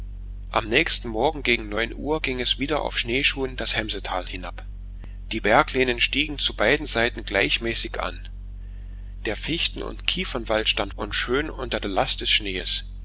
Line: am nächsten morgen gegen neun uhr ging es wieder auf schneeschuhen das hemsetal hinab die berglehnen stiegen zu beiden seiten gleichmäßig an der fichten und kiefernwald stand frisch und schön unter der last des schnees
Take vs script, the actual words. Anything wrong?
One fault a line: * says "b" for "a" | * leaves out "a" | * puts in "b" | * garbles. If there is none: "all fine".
* leaves out "frisch"